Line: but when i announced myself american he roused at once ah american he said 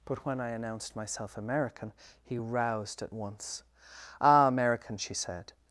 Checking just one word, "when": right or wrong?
right